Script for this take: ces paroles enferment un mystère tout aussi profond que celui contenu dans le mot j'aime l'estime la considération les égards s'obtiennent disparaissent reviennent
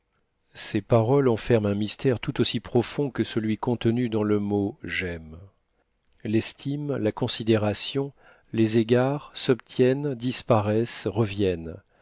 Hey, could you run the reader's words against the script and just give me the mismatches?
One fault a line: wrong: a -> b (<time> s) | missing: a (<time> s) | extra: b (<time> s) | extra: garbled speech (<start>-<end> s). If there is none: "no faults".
no faults